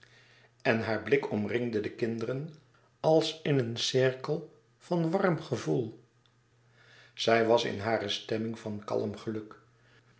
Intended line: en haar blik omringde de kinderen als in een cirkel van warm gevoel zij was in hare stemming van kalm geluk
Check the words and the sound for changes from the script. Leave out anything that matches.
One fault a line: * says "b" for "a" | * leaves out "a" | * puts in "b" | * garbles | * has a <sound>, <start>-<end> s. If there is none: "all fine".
all fine